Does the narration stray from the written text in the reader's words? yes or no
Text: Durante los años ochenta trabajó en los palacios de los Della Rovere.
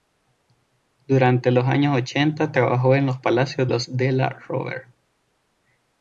yes